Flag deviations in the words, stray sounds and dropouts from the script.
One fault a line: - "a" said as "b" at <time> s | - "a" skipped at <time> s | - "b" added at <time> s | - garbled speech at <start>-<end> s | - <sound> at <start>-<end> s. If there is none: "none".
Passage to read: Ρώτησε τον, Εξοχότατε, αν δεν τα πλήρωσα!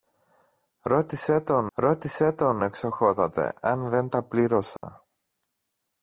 - "ρώτησε τον" added at 1.7 s
- dropout at 4.8-4.8 s